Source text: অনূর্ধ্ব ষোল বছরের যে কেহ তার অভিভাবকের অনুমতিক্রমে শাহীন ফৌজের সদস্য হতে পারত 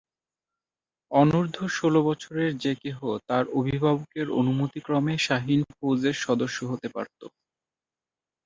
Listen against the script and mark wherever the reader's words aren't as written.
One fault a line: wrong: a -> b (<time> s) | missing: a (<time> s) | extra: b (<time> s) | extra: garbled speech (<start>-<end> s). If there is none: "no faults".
no faults